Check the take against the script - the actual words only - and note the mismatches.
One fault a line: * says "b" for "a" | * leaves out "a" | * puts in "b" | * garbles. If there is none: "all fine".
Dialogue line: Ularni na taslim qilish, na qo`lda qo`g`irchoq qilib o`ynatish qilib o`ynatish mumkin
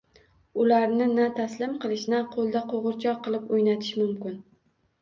* leaves out "qilib o`ynatish"